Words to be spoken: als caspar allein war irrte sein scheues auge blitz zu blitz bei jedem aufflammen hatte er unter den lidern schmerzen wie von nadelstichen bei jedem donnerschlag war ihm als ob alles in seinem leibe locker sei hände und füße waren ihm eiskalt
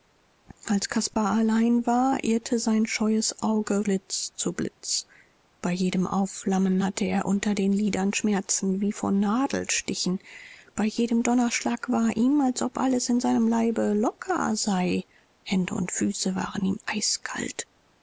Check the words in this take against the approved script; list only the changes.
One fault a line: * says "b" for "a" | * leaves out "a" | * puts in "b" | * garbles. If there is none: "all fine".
all fine